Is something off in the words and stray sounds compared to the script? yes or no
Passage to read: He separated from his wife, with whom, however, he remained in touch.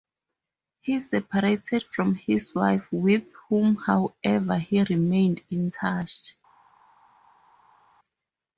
no